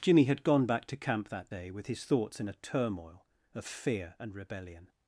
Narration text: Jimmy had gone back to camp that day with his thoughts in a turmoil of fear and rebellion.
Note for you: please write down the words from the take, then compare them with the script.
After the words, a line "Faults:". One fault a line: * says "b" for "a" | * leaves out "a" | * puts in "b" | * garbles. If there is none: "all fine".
Jimmy had gone back to camp that day with his thoughts in a turmoil of fear and rebellion.
Faults:
all fine